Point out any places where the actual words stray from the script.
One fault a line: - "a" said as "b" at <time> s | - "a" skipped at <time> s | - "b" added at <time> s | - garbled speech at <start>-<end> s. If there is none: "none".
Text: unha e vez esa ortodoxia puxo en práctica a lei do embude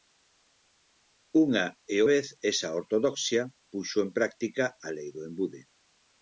none